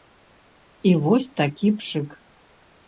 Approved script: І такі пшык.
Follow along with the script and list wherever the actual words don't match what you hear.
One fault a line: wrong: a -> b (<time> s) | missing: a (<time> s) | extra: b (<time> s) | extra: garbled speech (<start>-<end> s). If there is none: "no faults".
extra: вось (1.1 s)